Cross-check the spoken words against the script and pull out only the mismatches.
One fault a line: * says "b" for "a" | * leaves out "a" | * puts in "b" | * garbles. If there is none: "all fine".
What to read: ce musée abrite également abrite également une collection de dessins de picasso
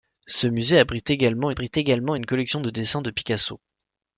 all fine